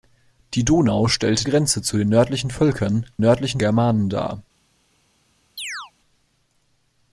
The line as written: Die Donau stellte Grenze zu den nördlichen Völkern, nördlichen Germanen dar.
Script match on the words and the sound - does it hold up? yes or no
no